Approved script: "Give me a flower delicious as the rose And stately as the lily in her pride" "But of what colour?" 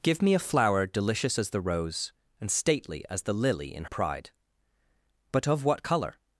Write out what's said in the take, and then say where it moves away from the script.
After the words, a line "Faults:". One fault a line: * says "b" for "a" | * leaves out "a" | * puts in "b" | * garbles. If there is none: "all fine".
"Give me a flower delicious as the rose And stately as the lily in pride" "But of what colour?"
Faults:
* leaves out "her"